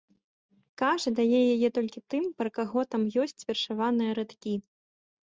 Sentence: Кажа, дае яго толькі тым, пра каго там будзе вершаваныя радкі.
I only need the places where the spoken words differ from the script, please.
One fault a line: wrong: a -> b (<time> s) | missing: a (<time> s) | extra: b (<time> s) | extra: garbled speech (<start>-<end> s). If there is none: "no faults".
wrong: яго -> яе (1.6 s)
wrong: будзе -> ёсць (3.3 s)